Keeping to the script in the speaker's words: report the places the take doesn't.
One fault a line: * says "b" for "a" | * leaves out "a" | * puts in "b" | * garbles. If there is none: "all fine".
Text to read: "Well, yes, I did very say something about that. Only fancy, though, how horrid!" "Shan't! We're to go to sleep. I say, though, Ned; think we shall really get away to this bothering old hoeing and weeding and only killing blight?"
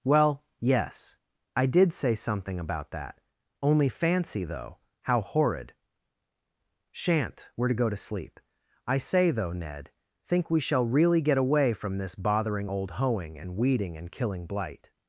* leaves out "very"
* says "from" for "to"
* leaves out "only"